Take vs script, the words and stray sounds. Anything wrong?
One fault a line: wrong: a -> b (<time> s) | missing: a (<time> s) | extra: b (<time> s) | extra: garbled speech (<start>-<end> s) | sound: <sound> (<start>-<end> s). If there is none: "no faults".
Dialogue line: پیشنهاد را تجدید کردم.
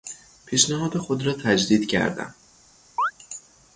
extra: خود (1.0 s)
sound: chirp (3.0-3.1 s)